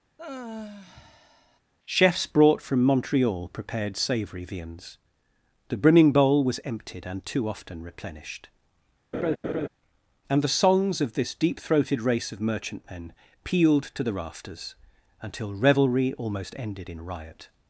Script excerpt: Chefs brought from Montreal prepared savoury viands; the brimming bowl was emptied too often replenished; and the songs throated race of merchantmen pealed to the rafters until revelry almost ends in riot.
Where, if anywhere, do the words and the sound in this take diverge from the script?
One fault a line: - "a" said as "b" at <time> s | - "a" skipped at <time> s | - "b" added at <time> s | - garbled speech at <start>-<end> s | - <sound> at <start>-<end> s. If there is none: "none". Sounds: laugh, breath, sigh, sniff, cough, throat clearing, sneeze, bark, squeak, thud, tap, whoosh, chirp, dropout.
- sigh at 0.2-1.6 s
- "and" added at 7.1 s
- laugh at 9.1-9.7 s
- "of this deep" added at 11.0 s
- "ends" said as "ended" at 16.6 s